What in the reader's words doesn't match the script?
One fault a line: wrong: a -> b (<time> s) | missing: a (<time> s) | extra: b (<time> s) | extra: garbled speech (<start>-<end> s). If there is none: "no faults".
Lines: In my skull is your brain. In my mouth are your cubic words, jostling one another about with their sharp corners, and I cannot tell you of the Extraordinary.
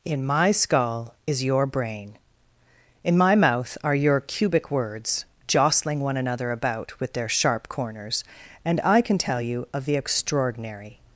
wrong: cannot -> can (9.0 s)